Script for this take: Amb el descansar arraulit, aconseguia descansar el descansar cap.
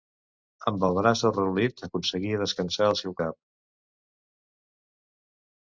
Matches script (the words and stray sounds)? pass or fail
fail